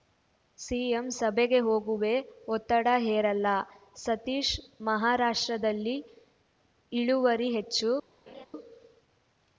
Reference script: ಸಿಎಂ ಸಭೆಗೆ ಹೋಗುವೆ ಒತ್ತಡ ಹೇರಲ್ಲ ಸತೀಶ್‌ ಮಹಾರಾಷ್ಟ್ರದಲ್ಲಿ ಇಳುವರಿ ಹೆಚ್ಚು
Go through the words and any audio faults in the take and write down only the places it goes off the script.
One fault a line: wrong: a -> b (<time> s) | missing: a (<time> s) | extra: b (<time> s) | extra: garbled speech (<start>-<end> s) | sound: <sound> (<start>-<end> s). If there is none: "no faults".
sound: laugh (8.3-8.5 s)